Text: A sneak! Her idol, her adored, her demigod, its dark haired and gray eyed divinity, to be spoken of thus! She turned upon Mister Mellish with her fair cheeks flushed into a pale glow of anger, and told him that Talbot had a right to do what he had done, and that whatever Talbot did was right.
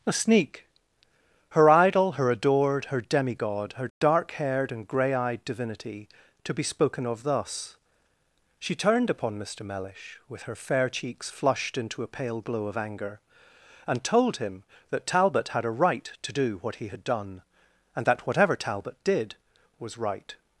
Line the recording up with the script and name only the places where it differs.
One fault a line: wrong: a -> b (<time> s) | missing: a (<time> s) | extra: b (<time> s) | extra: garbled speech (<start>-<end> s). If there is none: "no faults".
wrong: its -> her (3.7 s)